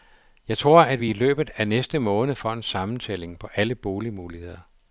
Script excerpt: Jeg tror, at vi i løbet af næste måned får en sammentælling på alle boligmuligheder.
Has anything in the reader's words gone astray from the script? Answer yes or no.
no